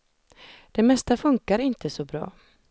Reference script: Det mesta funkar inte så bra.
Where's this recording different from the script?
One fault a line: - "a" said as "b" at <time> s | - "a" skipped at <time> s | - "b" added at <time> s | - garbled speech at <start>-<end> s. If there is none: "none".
none